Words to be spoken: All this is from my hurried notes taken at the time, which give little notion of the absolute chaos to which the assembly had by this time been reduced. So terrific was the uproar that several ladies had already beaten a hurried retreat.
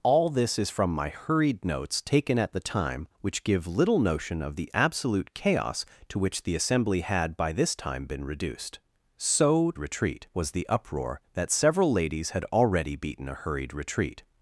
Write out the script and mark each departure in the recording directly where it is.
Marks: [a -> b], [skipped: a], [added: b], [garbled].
All this is from my hurried notes taken at the time, which give little notion of the absolute chaos to which the assembly had by this time been reduced. So [terrific -> retreat] was the uproar that several ladies had already beaten a hurried retreat.